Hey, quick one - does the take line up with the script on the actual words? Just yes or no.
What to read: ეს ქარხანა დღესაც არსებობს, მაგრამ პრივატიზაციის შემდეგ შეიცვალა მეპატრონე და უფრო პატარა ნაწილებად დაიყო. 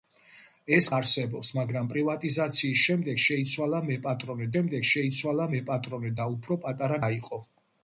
no